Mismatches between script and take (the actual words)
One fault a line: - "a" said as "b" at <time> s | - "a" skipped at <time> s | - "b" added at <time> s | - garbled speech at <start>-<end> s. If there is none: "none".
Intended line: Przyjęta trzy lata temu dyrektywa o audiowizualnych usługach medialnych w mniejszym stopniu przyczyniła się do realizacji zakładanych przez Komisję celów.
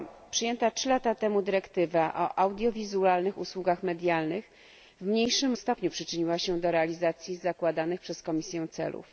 none